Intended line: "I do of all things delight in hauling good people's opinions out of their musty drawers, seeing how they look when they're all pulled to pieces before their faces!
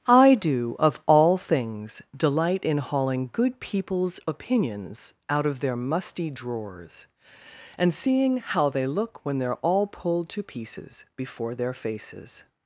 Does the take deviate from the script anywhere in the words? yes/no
yes